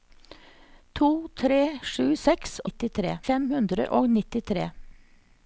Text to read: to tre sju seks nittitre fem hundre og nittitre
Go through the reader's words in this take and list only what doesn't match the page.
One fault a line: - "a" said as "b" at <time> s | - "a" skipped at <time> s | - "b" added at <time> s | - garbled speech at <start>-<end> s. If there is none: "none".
none